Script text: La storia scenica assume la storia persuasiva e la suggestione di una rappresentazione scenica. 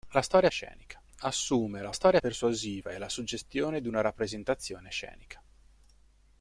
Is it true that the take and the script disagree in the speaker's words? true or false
false